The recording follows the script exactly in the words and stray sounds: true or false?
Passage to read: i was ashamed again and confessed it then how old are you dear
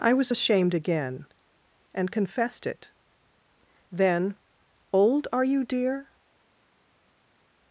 false